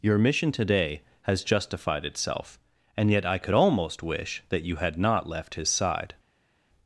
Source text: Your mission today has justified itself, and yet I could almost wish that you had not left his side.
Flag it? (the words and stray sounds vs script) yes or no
no